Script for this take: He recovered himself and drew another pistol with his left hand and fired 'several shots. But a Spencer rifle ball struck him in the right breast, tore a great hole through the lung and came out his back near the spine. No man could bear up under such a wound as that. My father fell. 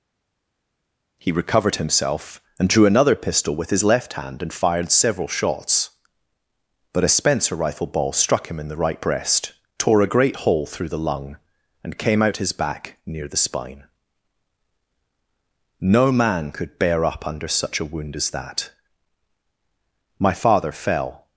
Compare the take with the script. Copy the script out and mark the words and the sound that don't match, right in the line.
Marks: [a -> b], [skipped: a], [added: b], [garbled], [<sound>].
He recovered himself and drew another pistol with his left hand and fired 'several shots. But a Spencer rifle ball struck him in the right breast, tore a great hole through the lung and came out his back near the spine. No man could bear up under such a wound as that. My father fell.